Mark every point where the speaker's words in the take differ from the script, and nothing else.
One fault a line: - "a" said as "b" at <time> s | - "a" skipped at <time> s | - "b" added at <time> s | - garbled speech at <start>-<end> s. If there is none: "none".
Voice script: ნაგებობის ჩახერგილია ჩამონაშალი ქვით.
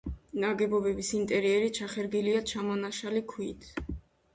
- "ინტერიერი" added at 1.2 s